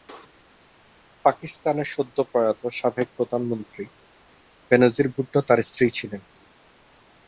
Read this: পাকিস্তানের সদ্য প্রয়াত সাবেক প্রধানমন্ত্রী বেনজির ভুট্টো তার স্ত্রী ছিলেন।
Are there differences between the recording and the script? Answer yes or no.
no